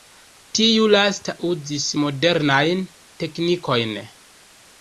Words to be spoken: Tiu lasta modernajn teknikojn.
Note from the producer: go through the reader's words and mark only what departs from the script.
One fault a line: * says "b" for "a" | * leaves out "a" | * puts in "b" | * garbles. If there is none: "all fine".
* puts in "uzis"